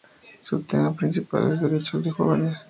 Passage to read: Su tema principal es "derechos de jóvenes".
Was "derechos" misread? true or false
false